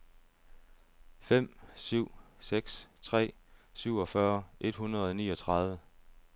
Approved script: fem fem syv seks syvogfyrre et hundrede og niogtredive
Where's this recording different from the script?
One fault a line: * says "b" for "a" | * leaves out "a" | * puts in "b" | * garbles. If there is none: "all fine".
* leaves out "fem"
* puts in "tre"